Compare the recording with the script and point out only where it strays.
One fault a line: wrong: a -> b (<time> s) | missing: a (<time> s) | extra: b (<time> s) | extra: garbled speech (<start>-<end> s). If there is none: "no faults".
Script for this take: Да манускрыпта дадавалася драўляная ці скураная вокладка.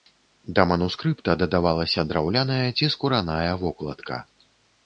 no faults